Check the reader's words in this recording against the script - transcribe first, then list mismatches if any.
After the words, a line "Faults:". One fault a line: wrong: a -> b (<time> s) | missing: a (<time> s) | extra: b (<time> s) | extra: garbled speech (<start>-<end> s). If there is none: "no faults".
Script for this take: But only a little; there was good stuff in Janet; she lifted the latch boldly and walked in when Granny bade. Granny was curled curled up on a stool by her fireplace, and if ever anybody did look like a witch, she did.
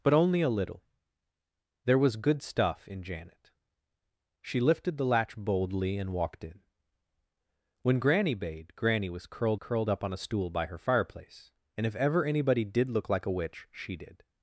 But only a little; there was good stuff in Janet; she lifted the latch boldly and walked in when Granny bade. Granny was curled curled up on a stool by her fireplace, and if ever anybody did look like a witch, she did.
Faults:
no faults